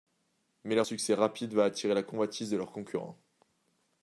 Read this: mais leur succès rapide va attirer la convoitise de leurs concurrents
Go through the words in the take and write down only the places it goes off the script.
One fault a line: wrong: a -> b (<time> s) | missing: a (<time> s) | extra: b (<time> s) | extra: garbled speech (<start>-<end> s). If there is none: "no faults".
no faults